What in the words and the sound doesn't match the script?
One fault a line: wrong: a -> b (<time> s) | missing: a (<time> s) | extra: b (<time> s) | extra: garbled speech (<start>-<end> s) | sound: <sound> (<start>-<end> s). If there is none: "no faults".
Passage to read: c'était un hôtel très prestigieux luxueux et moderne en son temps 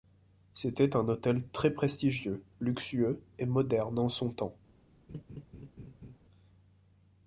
sound: laugh (5.1-6.2 s)